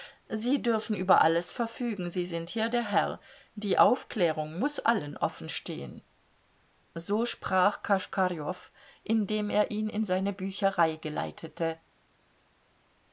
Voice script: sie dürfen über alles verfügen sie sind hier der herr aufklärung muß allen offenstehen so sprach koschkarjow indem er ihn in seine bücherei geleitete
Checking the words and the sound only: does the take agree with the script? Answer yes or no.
no